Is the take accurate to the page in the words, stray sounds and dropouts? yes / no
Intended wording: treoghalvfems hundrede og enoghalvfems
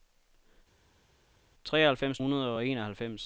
yes